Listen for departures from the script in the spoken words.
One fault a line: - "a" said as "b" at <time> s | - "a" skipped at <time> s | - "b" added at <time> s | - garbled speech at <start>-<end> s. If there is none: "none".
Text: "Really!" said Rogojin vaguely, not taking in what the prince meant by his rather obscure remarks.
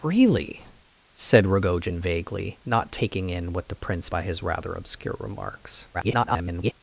- "meant" skipped at 4.1 s
- garbled speech at 5.9-6.7 s